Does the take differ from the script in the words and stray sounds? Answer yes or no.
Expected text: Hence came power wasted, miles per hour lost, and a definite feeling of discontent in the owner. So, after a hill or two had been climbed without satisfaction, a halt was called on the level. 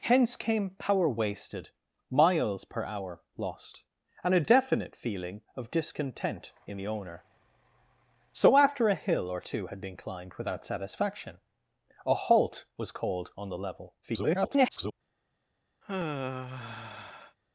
yes